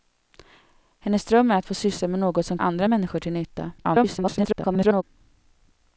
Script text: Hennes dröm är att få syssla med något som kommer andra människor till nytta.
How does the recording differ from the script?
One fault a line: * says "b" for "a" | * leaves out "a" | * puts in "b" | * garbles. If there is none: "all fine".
* leaves out "kommer"
* garbles